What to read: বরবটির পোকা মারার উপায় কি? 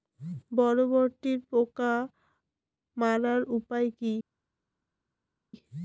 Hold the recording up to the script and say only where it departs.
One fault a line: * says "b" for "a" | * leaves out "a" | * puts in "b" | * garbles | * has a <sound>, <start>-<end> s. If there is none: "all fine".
all fine